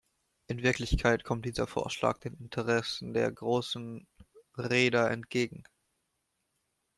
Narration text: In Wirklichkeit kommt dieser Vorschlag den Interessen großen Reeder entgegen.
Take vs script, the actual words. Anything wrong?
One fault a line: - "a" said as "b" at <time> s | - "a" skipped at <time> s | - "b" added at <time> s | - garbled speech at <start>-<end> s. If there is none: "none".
- "der" added at 3.1 s